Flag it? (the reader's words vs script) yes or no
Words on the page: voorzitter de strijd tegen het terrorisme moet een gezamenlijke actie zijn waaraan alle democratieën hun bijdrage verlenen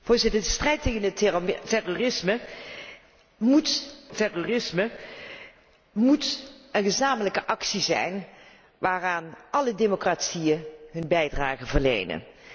yes